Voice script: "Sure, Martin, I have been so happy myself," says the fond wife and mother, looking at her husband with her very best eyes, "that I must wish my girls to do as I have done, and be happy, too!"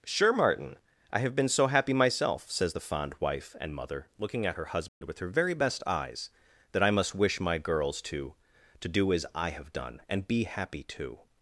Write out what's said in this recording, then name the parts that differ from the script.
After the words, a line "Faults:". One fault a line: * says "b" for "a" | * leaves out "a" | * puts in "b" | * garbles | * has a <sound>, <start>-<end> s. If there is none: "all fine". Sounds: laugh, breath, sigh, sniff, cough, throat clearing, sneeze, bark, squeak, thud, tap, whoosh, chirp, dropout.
"Sure, Martin, I have been so happy myself," says the fond wife and mother, looking at her husband with her very best eyes, "that I must wish my girls to to do as I have done, and be happy, too!"
Faults:
* has a dropout, 4.9-5.0 s
* puts in "to"